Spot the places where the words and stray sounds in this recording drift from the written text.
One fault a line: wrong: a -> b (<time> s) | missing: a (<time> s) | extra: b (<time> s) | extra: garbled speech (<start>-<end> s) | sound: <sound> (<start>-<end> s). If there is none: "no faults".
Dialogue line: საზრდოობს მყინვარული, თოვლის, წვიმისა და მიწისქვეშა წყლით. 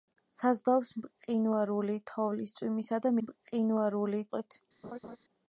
wrong: მიწისქვეშა -> მყინვარული (3.3 s)
sound: laugh (4.8-5.2 s)